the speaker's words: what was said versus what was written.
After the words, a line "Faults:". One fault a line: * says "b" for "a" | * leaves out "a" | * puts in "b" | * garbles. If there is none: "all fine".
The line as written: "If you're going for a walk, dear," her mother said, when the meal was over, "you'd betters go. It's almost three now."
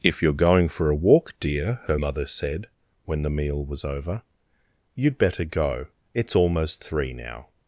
"If you're going for a walk, dear," her mother said, when the meal was over, "you'd better go. It's almost three now."
Faults:
* says "better" for "betters"